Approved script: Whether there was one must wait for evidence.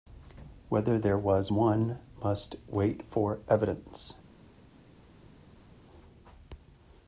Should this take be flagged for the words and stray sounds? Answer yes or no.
no